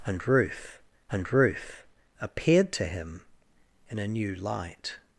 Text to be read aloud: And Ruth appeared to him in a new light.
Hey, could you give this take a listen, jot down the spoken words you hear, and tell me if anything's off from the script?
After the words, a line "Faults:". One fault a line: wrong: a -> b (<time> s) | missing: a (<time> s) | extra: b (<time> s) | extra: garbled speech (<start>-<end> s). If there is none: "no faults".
And Ruth and Ruth appeared to him in a new light.
Faults:
extra: and Ruth (1.1 s)